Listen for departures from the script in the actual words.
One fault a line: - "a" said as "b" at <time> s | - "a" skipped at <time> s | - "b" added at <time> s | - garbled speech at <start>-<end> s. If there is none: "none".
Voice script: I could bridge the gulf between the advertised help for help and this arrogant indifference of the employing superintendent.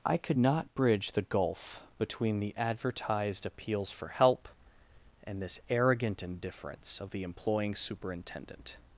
- "not" added at 0.4 s
- "help" said as "appeals" at 3.4 s